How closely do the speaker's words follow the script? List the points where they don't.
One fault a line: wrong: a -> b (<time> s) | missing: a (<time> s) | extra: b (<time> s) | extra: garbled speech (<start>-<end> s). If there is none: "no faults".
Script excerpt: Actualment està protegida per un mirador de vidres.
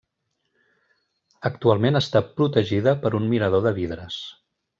no faults